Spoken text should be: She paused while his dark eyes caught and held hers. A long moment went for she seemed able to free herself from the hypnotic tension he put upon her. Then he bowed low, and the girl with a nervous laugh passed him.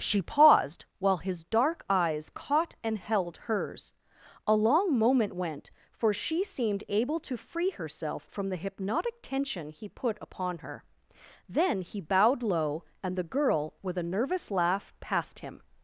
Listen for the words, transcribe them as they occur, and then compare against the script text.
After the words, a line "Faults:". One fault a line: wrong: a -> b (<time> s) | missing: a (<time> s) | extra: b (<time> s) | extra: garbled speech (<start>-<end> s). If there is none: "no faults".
She paused while his dark eyes caught and held hers. A long moment went for she seemed able to free herself from the hypnotic tension he put upon her. Then he bowed low, and the girl with a nervous laugh passed him.
Faults:
no faults